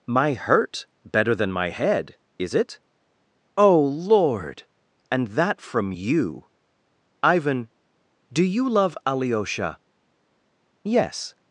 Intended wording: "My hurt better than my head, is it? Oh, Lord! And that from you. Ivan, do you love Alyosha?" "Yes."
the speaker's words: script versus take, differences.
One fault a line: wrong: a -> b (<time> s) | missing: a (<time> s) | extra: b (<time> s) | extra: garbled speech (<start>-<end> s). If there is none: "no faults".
no faults